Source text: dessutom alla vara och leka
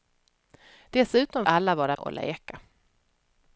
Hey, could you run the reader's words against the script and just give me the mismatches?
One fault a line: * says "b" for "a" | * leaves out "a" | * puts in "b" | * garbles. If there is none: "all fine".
all fine